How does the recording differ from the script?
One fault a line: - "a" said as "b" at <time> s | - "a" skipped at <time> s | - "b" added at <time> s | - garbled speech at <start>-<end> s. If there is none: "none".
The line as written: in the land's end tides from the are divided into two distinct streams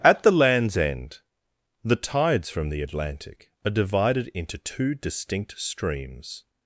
- "in" said as "at" at 0.0 s
- "the" added at 1.8 s
- "atlantic" added at 2.8 s